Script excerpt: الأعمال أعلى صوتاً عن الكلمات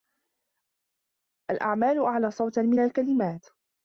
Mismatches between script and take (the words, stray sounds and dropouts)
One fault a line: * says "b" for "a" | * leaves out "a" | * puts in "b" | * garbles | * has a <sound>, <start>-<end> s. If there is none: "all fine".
* says "من" for "عن"